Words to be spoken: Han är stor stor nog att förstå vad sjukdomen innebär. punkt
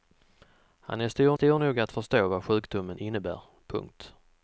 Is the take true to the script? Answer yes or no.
yes